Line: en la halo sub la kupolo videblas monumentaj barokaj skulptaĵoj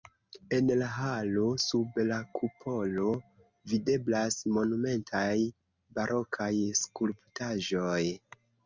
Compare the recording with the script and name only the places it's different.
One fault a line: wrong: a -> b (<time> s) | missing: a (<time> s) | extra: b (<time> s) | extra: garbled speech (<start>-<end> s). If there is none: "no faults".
no faults